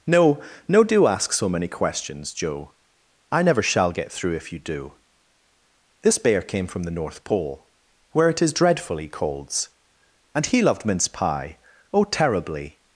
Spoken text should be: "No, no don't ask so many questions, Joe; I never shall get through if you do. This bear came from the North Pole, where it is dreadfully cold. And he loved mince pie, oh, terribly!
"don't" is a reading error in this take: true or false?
true